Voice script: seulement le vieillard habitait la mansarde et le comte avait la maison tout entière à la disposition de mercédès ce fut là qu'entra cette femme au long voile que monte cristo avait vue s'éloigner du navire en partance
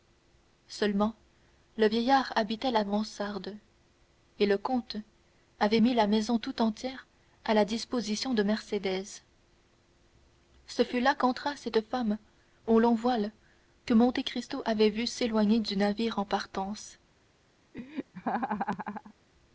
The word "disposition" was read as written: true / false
true